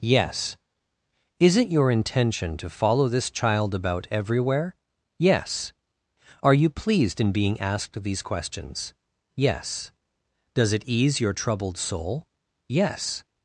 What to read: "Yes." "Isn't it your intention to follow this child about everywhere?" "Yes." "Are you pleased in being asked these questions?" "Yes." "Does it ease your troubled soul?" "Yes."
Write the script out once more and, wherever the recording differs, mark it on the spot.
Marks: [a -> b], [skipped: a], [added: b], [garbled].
"Yes." ["Isn't -> Is] it your intention to follow this child about everywhere?" "Yes." "Are you pleased in being asked these questions?" "Yes." "Does it ease your troubled soul?" "Yes."